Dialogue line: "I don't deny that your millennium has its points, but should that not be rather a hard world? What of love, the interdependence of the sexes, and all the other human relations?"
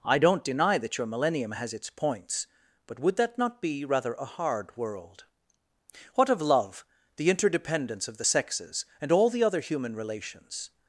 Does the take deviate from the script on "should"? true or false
true